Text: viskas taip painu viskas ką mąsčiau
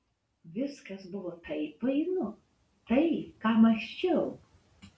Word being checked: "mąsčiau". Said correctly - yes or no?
yes